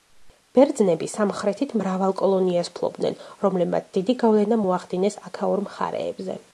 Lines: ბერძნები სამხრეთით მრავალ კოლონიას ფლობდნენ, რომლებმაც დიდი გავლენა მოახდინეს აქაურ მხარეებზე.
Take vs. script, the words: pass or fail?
pass